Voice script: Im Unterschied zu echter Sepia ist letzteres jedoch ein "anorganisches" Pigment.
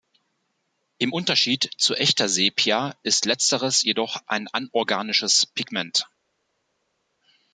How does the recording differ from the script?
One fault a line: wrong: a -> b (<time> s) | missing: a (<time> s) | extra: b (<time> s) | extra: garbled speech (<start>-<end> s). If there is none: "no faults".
no faults